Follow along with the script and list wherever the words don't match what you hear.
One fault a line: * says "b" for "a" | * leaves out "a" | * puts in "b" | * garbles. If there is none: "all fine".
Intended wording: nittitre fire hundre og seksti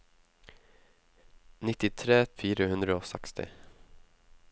all fine